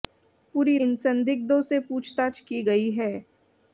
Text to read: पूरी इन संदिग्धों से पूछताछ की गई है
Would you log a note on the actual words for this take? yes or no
no